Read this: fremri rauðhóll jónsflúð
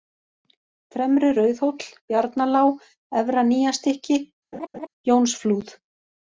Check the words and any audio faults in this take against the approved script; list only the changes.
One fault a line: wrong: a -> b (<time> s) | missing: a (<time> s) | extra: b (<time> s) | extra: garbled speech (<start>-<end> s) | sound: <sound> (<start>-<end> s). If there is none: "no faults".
extra: bjarnalág efra nýjastykki (2.1 s)
sound: laugh (4.5-4.9 s)